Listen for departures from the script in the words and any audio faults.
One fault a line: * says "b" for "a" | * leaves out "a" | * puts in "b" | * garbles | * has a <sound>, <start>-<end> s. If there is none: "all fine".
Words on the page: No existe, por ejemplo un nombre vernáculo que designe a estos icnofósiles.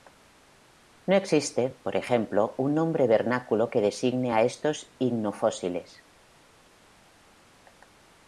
all fine